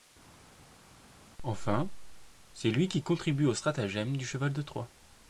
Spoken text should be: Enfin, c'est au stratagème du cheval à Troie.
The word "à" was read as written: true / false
false